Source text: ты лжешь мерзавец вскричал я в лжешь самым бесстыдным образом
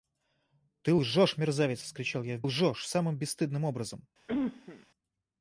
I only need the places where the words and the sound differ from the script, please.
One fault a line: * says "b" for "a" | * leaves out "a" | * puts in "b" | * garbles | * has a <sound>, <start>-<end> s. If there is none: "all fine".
* has a cough, 4.3-4.9 s